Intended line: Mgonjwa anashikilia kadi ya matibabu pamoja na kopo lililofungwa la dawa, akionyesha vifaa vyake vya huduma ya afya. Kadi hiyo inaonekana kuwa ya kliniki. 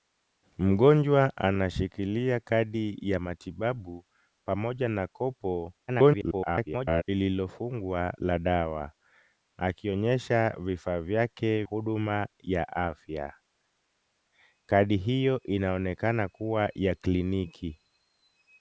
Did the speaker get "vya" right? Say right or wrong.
wrong